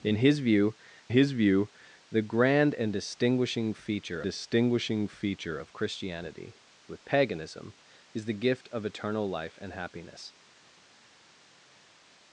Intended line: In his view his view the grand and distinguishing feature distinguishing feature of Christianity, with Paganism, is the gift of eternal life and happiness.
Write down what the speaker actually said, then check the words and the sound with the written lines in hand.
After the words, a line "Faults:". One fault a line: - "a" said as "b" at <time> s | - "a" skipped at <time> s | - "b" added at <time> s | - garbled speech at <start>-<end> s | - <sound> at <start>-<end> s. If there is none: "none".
In his view his view the grand and distinguishing feature distinguishing feature of Christianity, with Paganism, is the gift of eternal life and happiness.
Faults:
none